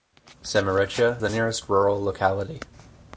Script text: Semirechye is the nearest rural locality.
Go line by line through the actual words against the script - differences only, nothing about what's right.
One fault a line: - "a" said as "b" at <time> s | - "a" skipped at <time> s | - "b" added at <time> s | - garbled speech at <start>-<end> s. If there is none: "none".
- "is" skipped at 1.2 s